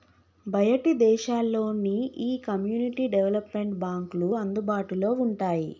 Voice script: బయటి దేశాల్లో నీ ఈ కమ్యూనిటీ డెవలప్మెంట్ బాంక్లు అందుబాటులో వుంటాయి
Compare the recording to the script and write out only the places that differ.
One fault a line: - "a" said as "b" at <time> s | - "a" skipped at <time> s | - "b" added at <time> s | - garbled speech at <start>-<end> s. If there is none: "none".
none